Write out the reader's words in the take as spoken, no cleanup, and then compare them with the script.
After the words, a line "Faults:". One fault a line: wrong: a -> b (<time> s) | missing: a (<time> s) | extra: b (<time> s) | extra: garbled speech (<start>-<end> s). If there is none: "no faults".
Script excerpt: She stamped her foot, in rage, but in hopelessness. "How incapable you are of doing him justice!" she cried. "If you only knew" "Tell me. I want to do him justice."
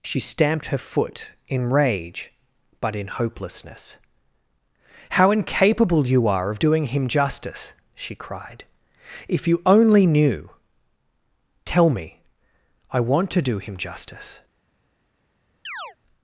She stamped her foot, in rage, but in hopelessness. "How incapable you are of doing him justice!" she cried. "If you only knew" "Tell me. I want to do him justice."
Faults:
no faults